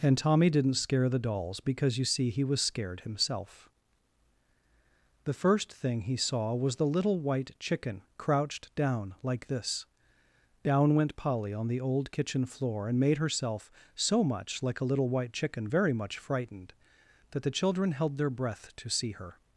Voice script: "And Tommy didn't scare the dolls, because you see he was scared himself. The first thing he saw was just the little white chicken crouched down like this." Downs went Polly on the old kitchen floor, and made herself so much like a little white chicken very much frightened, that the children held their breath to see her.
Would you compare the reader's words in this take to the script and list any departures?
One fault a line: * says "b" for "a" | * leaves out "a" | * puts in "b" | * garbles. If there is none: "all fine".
* leaves out "just"
* says "Down" for "Downs"